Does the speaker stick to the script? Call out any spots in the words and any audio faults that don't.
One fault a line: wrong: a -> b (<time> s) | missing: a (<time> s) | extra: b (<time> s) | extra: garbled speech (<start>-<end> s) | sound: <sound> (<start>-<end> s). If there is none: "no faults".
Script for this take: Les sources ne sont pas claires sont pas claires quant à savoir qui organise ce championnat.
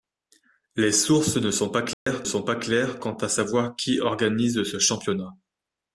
sound: dropout (1.9-2.1 s)